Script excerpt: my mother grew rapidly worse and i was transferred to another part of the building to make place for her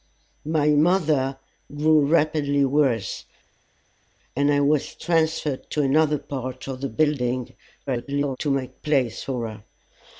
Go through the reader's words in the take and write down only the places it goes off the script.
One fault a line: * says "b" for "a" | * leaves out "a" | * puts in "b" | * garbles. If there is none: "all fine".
* garbles